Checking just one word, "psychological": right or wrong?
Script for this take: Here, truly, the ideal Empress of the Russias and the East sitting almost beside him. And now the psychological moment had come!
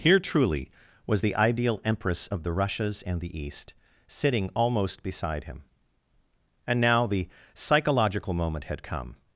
right